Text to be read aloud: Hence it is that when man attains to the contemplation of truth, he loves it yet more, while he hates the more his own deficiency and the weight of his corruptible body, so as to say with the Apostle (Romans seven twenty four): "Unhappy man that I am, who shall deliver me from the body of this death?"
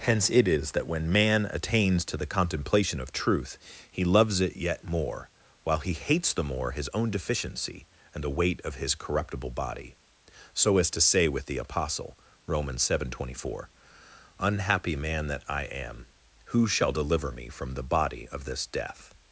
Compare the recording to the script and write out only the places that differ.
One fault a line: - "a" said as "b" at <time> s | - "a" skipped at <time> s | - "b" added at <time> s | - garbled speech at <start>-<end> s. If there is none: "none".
none